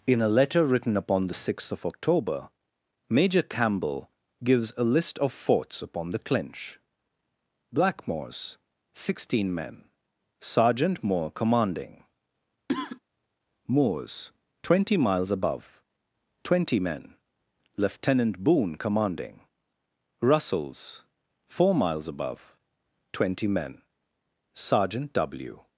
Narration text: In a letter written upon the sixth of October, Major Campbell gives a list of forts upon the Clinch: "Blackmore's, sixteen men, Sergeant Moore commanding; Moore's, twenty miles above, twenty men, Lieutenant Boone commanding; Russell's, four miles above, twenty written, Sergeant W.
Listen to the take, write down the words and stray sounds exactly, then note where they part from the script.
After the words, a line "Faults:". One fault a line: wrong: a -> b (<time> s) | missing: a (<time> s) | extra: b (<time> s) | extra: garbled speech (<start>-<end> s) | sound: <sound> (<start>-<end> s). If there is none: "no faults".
In a letter written upon the sixth of October, Major Campbell gives a list of forts upon the Clinch: "Blackmore's, sixteen men, Sergeant Moore commanding; Moore's, twenty miles above, twenty men, Lieutenant Boone commanding; Russell's, four miles above, twenty men, Sergeant W.
Faults:
sound: cough (12.7-13.0 s)
wrong: written -> men (23.5 s)